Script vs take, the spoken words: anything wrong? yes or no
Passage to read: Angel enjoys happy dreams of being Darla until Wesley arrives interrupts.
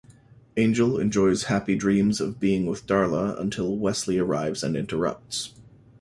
yes